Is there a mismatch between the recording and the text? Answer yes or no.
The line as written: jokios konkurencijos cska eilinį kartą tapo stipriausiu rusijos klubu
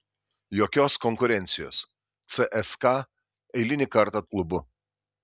yes